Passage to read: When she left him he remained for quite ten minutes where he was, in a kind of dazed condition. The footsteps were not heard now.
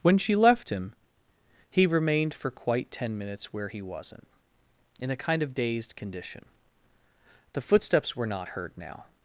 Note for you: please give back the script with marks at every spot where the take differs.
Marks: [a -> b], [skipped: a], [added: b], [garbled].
When she left him he remained for quite ten minutes where he [was, -> wasn't] in a kind of dazed condition. The footsteps were not heard now.